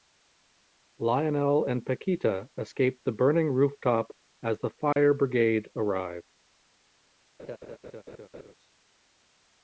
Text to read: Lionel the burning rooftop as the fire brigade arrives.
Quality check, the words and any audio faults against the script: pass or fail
fail